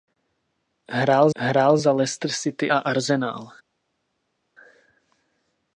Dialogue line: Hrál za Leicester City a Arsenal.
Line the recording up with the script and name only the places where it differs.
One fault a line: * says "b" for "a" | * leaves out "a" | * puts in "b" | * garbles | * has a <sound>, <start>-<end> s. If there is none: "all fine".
* puts in "hrál"